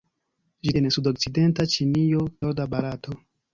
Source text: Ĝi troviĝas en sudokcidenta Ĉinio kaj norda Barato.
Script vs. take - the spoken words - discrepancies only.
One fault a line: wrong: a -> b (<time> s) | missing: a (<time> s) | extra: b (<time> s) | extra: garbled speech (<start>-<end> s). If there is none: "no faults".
missing: troviĝas (0.7 s)
missing: kaj (2.3 s)